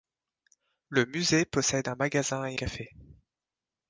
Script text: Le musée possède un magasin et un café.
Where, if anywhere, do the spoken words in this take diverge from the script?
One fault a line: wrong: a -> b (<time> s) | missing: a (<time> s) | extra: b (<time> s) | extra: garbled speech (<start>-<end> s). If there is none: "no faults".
missing: un (2.6 s)